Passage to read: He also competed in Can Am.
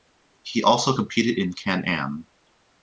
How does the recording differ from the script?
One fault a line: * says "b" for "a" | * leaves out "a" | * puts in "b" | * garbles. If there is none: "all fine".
all fine